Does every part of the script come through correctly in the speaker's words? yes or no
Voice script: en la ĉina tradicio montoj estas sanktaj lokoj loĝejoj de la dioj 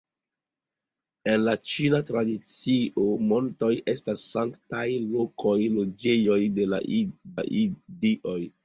no